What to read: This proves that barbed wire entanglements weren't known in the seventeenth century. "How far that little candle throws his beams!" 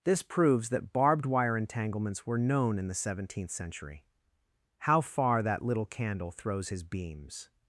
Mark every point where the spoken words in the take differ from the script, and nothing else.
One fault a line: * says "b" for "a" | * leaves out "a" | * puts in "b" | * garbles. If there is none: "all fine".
* says "were" for "weren't"